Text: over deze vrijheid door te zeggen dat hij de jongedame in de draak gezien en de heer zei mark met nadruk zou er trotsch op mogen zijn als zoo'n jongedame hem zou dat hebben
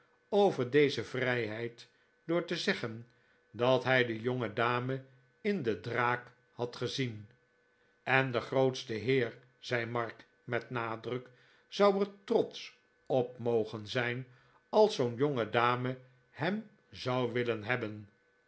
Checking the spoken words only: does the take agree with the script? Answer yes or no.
no